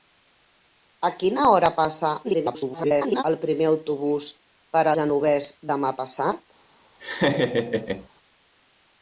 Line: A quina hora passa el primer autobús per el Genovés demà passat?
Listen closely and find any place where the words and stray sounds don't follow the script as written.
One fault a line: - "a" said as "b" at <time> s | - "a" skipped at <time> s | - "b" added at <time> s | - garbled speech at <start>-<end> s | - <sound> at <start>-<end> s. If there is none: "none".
- garbled speech at 2.2-3.2 s
- "el" skipped at 4.9 s
- laugh at 7.0-8.1 s